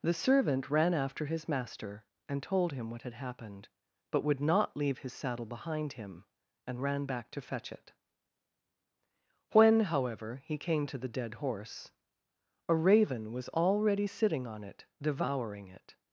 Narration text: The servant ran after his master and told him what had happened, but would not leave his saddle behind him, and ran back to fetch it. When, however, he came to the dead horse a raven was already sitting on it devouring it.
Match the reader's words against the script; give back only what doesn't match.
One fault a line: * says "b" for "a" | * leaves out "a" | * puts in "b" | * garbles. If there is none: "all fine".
all fine